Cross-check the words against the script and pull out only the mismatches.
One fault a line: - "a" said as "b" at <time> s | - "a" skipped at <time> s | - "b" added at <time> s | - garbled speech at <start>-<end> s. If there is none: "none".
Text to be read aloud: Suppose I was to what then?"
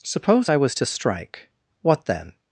- "strike" added at 0.9 s